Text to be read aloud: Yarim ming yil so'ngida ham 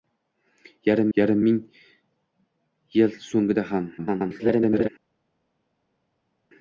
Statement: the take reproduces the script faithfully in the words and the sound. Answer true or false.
false